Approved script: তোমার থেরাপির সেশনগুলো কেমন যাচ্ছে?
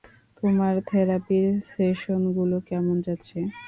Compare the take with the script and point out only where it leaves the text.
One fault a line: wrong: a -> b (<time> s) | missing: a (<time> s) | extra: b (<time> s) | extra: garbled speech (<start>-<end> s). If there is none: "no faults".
no faults